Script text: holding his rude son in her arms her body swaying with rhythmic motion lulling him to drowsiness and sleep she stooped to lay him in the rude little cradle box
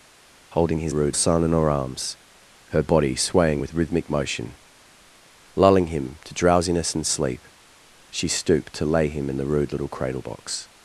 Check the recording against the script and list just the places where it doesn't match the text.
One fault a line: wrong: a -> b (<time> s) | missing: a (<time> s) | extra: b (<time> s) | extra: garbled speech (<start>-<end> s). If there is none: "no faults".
no faults